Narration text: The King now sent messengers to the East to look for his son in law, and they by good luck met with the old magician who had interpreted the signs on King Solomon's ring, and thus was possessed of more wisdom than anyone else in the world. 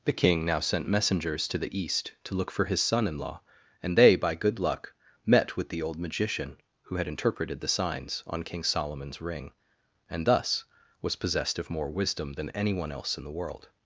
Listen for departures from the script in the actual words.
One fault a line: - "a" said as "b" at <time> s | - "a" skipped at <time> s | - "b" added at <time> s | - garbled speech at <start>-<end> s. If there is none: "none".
none